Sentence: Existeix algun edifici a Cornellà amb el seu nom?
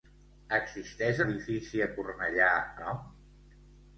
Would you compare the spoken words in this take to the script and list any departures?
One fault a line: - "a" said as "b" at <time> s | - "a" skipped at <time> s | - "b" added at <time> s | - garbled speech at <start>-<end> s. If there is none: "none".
- "algun" skipped at 1.2 s
- "amb el seu" skipped at 2.5 s